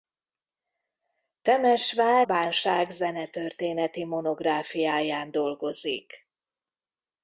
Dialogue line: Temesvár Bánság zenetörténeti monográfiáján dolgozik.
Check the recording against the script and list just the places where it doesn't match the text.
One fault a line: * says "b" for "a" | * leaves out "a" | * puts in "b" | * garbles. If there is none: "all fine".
all fine